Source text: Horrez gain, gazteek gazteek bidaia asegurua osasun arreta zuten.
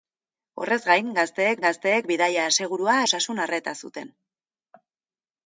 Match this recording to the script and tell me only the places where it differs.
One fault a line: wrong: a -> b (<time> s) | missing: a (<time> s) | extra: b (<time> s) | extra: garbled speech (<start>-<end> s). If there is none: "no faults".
no faults